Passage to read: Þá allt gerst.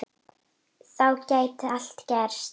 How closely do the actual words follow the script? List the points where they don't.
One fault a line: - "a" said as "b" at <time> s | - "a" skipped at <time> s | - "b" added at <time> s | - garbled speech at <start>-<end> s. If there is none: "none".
- "gæti" added at 1.3 s